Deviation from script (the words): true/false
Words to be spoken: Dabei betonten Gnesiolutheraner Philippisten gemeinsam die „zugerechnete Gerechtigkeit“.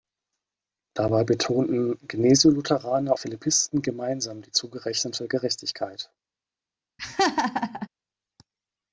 false